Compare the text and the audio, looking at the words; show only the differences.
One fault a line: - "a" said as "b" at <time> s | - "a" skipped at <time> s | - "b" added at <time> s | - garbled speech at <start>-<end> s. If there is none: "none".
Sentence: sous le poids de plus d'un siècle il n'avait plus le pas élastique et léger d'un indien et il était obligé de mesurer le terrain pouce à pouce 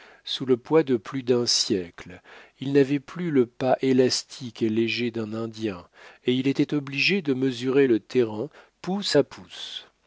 none